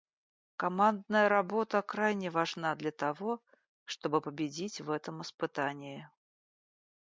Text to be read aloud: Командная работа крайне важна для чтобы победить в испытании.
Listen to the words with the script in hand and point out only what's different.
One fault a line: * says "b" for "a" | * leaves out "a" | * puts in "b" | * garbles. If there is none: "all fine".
* puts in "того"
* puts in "этом"